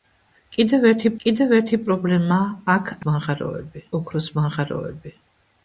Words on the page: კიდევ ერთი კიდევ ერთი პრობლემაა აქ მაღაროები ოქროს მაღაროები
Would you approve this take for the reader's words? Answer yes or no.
yes